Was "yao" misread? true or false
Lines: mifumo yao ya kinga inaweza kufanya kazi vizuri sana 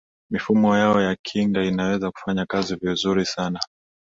false